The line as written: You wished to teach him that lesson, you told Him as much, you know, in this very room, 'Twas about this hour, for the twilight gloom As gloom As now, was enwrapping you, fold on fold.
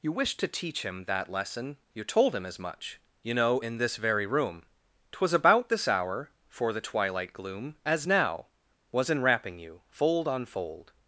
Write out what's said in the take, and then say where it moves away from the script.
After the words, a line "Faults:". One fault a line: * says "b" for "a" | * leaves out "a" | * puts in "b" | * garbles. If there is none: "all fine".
You wished to teach him that lesson, you told Him as much, you know, in this very room, 'Twas about this hour, for the twilight gloom As now, was enwrapping you, fold on fold.
Faults:
* leaves out "gloom As"